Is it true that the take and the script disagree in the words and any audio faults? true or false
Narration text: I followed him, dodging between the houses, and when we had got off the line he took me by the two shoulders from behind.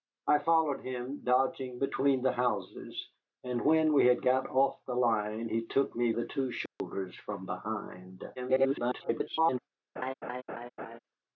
true